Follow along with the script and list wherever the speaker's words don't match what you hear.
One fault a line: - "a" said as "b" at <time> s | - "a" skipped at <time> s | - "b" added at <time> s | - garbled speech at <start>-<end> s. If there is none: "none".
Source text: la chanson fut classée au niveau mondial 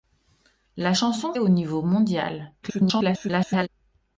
- "fut classée" skipped at 1.3 s
- garbled speech at 2.6-3.7 s